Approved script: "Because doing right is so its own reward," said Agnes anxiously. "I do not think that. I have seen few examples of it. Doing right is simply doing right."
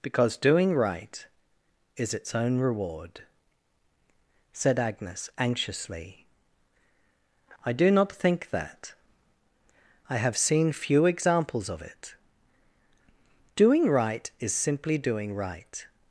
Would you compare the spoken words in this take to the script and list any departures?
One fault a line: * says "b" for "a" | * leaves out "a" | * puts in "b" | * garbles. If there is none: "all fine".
* leaves out "so"